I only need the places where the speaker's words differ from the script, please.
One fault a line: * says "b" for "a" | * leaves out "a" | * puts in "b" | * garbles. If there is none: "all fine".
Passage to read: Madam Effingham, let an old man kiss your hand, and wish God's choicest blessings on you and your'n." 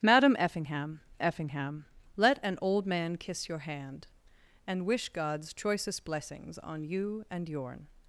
* puts in "Effingham"